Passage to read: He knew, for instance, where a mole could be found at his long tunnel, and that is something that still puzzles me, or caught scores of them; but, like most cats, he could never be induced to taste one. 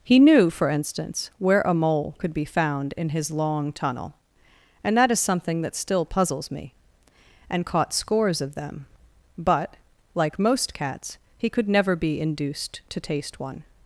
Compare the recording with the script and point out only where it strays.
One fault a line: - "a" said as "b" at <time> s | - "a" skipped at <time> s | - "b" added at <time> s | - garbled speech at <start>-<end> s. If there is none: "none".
- "at" said as "in" at 3.0 s
- "or" said as "and" at 7.5 s